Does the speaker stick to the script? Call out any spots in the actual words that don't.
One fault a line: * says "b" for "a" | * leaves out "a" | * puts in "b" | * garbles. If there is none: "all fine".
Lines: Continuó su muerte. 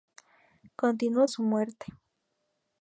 all fine